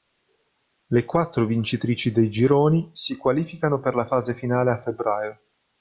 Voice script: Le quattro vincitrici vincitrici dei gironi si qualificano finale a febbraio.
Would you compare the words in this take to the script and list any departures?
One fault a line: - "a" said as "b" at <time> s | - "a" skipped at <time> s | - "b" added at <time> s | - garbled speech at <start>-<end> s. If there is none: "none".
- "vincitrici" skipped at 2.1 s
- "per la fase" added at 3.8 s